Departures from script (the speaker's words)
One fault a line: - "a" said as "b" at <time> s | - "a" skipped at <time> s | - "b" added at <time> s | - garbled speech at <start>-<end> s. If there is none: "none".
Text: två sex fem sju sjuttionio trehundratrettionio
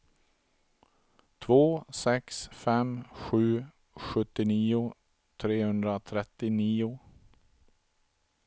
none